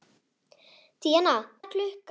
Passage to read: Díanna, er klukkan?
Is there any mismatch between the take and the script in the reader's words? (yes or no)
no